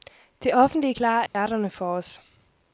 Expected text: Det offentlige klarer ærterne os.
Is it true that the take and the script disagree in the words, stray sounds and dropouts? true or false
true